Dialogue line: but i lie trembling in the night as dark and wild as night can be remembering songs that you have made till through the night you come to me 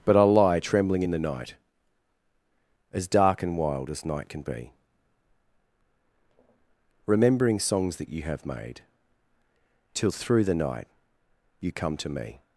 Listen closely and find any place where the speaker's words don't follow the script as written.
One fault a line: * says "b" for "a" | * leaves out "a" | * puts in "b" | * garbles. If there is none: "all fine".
all fine